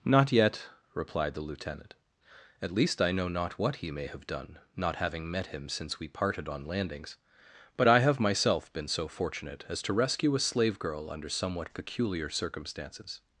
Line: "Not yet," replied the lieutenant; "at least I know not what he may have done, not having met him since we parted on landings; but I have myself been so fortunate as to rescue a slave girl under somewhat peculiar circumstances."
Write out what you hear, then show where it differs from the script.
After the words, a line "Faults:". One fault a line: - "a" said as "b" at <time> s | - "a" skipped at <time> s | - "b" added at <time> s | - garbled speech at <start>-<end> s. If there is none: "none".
"Not yet," replied the lieutenant; "at least I know not what he may have done, not having met him since we parted on landings; but I have myself been so fortunate as to rescue a slave girl under somewhat peculiar circumstances."
Faults:
none